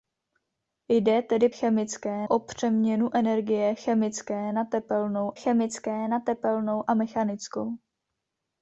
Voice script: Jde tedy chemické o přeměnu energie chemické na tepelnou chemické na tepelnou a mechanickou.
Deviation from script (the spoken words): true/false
false